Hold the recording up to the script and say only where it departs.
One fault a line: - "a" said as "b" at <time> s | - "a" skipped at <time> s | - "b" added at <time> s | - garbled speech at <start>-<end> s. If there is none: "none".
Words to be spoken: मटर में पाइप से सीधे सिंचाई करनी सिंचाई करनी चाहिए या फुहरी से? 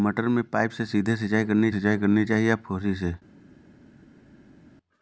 none